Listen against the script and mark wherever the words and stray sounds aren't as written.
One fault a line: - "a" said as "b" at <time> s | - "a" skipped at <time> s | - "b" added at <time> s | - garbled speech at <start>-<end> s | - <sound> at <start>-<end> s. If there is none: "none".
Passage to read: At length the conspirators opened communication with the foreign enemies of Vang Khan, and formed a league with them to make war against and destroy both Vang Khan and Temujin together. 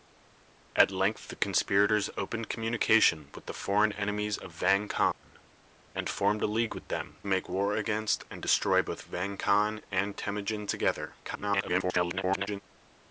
- dropout at 5.1-5.2 s
- "to" skipped at 7.2 s
- garbled speech at 11.2-12.6 s